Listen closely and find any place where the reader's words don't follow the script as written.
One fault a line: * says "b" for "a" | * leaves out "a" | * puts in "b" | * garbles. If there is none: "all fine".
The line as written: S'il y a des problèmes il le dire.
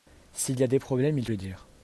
all fine